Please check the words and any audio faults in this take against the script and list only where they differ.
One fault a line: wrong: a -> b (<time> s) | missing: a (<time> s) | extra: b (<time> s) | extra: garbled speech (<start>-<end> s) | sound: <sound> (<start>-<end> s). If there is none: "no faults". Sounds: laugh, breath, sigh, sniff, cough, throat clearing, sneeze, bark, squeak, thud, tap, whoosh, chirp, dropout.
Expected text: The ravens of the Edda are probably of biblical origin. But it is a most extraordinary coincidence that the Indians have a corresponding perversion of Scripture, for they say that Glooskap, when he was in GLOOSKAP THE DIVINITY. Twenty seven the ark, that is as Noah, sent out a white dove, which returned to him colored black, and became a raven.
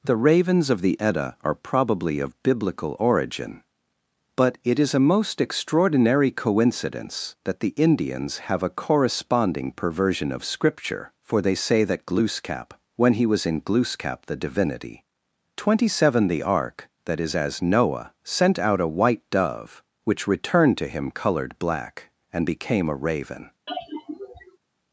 sound: sigh (23.7-24.6 s)